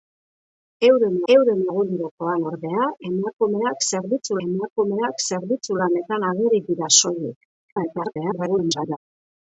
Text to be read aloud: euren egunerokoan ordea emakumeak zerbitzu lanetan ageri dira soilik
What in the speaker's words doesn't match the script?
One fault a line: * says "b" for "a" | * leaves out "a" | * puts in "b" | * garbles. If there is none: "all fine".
* puts in "euren"
* puts in "emakumeak zerbitzu"
* garbles